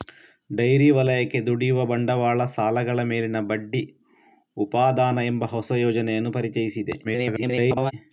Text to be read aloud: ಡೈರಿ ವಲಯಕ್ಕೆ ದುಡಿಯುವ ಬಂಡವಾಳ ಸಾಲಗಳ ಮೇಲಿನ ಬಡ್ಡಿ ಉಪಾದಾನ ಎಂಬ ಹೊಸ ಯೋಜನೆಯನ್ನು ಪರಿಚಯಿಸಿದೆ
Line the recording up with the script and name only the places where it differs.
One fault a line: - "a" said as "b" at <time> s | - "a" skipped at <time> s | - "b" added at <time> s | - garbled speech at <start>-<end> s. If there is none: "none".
- garbled speech at 7.0-7.9 s